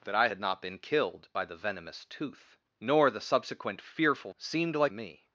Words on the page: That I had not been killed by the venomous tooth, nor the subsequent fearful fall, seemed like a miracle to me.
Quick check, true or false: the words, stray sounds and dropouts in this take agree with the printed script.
false